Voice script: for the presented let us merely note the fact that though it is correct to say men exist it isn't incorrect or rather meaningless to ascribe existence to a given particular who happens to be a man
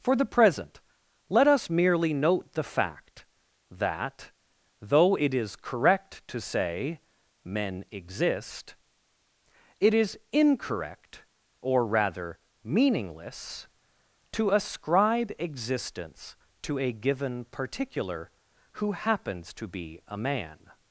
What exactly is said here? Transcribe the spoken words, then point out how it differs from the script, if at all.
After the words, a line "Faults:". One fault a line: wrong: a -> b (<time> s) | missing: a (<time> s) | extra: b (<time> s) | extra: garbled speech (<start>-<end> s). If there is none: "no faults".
for the present let us merely note the fact that though it is correct to say men exist it is incorrect or rather meaningless to ascribe existence to a given particular who happens to be a man
Faults:
wrong: presented -> present (0.2 s)
wrong: isn't -> is (9.9 s)